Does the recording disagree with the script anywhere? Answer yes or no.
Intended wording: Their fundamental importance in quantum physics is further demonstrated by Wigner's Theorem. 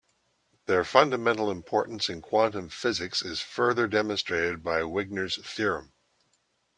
no